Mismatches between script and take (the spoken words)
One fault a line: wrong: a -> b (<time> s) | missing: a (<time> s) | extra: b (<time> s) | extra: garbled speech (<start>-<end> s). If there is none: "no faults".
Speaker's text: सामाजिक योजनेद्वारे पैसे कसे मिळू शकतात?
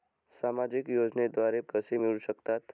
missing: पैसे (1.6 s)